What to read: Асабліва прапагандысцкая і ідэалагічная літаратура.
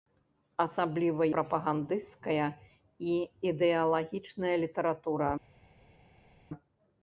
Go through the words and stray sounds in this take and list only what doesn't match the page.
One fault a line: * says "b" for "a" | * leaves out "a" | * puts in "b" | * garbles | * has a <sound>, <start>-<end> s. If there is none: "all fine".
all fine